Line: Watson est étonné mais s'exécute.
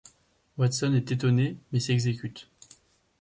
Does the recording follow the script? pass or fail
pass